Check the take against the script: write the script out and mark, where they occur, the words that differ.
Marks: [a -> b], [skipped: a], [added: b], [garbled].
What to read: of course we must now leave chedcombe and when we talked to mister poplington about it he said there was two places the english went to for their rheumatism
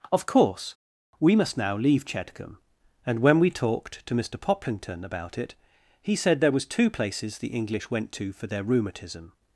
of course we must now leave chedcombe and when we talked to mister poplington about it he said there was two places the english went to for their rheumatism